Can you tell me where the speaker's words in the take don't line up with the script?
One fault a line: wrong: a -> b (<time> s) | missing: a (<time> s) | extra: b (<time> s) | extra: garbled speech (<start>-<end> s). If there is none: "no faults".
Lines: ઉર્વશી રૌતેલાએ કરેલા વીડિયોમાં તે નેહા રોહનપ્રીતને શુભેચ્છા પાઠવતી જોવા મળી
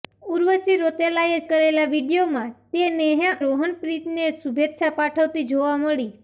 no faults